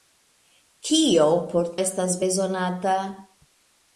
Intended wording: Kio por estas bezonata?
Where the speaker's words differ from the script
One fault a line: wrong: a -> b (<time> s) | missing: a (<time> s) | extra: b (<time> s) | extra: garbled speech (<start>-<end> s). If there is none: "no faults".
no faults